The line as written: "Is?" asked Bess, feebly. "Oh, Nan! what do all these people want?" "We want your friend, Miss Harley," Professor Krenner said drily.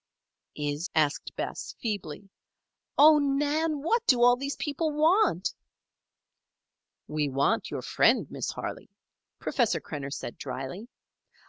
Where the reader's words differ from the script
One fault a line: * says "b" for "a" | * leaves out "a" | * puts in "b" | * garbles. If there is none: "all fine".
all fine